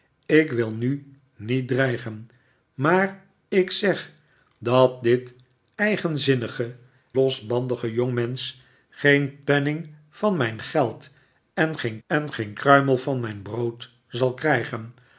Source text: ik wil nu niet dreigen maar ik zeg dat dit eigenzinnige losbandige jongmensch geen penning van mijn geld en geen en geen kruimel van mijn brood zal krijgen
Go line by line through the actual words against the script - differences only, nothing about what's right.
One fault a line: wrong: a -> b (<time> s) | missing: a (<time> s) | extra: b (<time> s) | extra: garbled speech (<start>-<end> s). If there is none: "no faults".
no faults